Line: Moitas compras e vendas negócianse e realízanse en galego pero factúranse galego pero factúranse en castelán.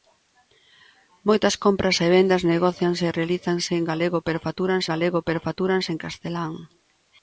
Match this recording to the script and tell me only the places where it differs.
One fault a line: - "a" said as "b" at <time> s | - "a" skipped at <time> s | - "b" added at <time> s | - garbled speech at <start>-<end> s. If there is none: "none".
none